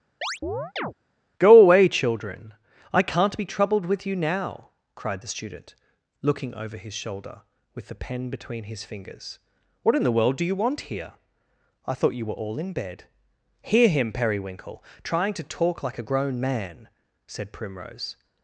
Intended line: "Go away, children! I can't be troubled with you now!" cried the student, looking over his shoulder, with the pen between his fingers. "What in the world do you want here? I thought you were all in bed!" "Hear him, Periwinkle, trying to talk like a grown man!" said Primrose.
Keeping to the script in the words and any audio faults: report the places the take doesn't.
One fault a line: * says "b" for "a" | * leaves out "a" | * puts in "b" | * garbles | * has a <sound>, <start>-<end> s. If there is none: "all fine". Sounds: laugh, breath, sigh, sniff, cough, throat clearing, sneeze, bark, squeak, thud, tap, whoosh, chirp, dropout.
* has a chirp, 0.2-0.9 s